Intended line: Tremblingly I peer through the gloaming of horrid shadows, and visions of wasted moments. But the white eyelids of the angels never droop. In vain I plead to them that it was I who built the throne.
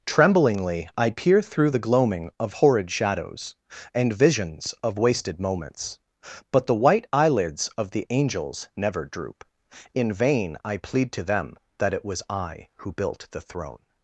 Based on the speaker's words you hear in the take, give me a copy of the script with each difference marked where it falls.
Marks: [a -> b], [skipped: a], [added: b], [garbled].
Tremblingly I peer through the gloaming of horrid shadows, and visions of wasted moments. But the white eyelids of the angels never droop. In vain I plead to them that it was I who built the throne.